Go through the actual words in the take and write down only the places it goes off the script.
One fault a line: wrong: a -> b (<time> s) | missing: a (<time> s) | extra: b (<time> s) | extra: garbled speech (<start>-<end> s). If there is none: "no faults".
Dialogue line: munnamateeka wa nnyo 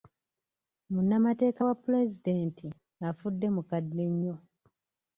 extra: pulezidenti afudde mukadde (1.8 s)